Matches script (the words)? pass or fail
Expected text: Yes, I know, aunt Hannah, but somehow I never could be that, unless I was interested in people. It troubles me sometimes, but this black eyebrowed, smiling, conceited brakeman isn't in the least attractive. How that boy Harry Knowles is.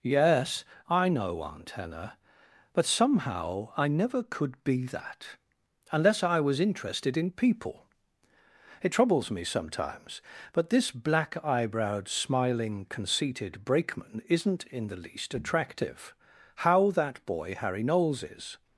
pass